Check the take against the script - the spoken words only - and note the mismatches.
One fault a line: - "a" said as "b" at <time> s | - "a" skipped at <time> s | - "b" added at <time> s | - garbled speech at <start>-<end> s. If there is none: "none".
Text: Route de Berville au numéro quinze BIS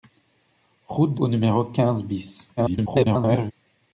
- "Berville" skipped at 1.2 s
- garbled speech at 2.6-3.5 s